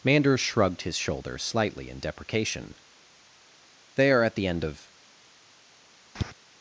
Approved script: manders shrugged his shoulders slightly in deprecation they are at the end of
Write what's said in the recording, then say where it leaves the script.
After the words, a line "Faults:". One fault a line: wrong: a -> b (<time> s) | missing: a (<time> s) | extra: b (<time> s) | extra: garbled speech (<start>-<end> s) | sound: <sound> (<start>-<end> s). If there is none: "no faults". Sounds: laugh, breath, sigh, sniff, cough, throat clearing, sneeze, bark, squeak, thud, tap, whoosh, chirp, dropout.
manders shrugged his shoulders slightly in deprecation they are at the end of
Faults:
sound: tap (6.2-6.3 s)